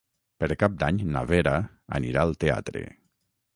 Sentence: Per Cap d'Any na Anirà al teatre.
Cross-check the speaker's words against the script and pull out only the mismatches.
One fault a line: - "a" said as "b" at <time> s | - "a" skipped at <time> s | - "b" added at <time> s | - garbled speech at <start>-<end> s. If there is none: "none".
- "Vera" added at 1.3 s